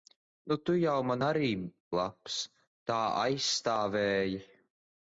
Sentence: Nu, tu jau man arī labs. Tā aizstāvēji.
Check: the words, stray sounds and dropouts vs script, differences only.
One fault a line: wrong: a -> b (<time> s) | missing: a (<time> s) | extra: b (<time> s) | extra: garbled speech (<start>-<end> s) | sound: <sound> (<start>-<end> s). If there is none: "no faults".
no faults